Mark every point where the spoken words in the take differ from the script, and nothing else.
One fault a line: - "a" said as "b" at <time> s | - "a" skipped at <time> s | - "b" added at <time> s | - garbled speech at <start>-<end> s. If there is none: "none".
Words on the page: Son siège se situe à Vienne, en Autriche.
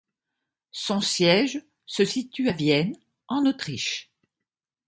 none